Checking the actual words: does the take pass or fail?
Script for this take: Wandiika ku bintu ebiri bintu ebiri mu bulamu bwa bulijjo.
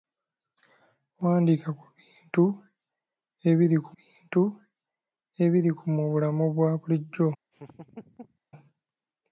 pass